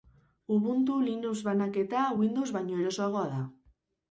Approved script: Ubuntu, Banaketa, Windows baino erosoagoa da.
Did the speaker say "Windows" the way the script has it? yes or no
yes